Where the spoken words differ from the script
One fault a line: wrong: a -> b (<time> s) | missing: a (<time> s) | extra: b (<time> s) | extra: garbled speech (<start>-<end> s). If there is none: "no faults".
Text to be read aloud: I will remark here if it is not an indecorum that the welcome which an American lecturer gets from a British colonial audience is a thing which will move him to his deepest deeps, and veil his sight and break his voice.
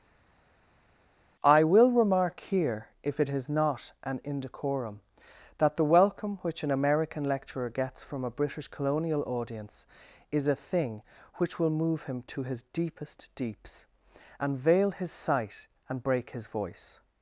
no faults